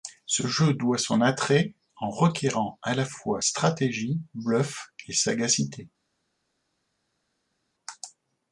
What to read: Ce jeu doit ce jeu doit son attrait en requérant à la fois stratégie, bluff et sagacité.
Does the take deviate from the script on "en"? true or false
false